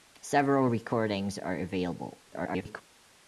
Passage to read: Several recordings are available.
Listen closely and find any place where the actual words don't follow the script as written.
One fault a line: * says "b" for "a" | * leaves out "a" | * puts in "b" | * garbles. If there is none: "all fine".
* garbles